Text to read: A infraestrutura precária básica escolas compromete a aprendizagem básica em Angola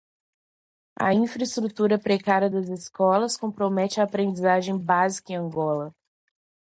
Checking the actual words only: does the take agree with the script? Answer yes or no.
no